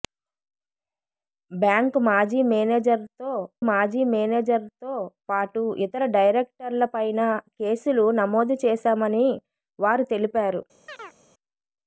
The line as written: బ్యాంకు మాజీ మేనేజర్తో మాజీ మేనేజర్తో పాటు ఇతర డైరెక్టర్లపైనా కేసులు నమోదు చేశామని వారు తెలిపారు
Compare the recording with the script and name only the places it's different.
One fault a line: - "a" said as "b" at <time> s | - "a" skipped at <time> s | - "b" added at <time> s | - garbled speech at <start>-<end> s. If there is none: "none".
none